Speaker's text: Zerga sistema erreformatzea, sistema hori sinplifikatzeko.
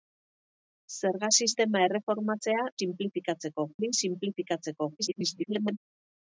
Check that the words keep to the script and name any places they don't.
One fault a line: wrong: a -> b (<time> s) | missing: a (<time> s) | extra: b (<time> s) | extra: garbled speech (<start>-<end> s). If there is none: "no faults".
wrong: sistema -> sinplifikatzeko (2.8 s)
extra: garbled speech (5.0-5.8 s)